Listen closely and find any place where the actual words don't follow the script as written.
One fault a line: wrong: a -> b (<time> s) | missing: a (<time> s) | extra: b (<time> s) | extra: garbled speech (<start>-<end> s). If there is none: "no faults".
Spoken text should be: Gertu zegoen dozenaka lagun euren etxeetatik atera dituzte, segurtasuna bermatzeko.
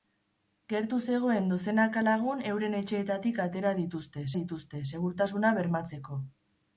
extra: dituzte (4.4 s)